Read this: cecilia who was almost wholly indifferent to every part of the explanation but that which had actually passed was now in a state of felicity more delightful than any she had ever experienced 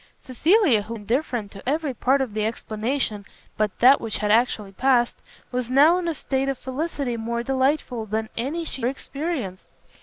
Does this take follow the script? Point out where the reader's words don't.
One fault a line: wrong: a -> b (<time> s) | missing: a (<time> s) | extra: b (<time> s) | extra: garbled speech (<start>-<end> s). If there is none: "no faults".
missing: was almost wholly (0.9 s)
missing: had ever (8.8 s)